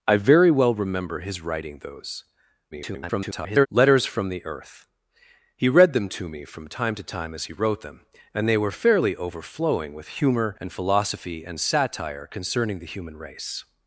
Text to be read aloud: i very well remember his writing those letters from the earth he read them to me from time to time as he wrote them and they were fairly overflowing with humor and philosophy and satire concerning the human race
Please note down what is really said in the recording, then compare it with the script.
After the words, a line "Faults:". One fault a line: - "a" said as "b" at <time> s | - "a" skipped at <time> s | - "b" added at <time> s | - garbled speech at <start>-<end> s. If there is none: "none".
i very well remember his writing those [garbled] letters from the earth he read them to me from time to time as he wrote them and they were fairly overflowing with humor and philosophy and satire concerning the human race
Faults:
- garbled speech at 2.7-3.7 s